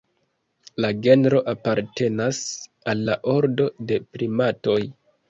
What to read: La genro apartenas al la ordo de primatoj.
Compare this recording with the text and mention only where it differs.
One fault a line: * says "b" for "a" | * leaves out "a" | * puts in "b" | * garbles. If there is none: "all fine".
all fine